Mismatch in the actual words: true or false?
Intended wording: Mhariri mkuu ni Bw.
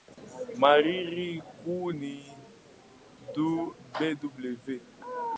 false